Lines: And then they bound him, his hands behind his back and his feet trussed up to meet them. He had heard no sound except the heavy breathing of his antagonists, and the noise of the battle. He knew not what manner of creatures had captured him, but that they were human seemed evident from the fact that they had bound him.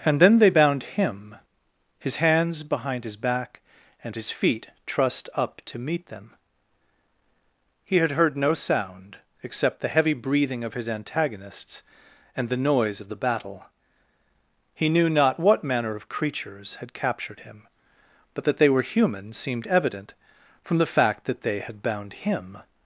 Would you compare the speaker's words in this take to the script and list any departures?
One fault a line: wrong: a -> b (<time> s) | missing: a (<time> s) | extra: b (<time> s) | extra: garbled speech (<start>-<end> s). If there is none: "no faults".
no faults